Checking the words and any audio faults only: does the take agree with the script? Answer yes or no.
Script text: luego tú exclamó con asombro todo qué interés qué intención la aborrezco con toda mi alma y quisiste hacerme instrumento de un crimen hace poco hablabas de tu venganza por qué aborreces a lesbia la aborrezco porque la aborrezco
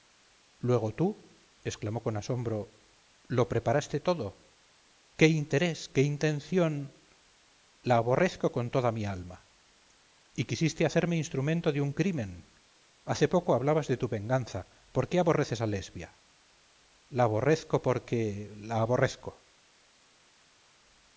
no